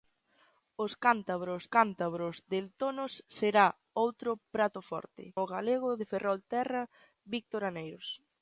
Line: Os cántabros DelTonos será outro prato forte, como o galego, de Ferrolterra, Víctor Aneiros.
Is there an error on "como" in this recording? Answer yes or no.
yes